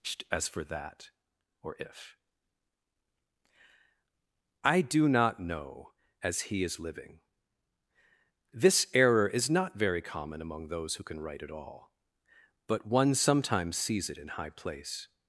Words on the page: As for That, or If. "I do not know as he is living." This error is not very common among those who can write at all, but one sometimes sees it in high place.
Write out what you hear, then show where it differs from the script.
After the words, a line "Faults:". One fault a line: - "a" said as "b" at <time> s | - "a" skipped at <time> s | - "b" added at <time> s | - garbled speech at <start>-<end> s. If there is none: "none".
As for That, or If. "I do not know as he is living." This error is not very common among those who can write at all, but one sometimes sees it in high place.
Faults:
none